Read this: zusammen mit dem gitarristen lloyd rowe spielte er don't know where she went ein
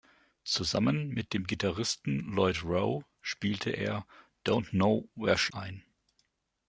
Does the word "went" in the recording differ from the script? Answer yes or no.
yes